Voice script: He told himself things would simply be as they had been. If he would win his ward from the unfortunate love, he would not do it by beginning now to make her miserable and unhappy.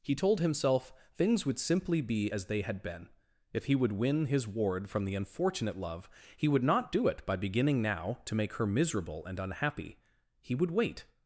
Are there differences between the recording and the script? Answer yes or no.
yes